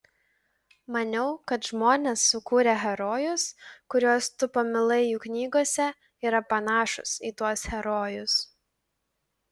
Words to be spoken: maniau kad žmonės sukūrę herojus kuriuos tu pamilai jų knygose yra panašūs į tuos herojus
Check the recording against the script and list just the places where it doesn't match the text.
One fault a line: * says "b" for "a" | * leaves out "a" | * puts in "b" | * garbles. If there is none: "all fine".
all fine